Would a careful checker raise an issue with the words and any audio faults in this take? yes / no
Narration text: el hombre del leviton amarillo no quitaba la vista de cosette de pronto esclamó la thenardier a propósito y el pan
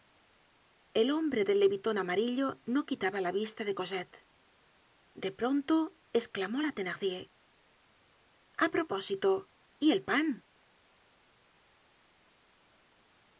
no